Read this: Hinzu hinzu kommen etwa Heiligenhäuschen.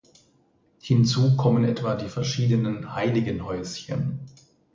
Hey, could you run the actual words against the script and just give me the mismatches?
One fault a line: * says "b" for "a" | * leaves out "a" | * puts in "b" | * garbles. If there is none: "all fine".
* leaves out "hinzu"
* puts in "die verschiedenen"